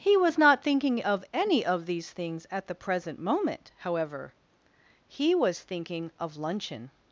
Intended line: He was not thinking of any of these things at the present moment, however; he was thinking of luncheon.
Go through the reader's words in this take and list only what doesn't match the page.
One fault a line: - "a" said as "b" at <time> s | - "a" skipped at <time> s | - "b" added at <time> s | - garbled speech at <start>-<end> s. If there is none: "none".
none